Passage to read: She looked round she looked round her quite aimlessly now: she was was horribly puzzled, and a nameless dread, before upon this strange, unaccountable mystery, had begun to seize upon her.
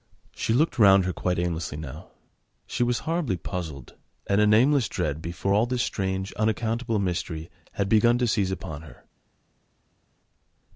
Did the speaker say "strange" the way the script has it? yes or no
yes